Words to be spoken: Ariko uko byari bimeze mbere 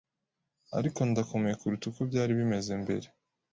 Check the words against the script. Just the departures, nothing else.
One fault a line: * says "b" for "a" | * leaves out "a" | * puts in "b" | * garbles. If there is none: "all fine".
* puts in "ndakomeye kuruta"